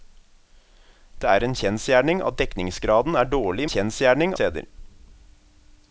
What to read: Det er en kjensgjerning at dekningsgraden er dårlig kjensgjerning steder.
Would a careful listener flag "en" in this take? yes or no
no